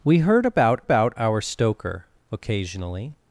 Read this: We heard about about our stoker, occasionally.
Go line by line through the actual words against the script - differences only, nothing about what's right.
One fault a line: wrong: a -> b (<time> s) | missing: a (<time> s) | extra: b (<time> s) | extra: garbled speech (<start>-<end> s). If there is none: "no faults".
no faults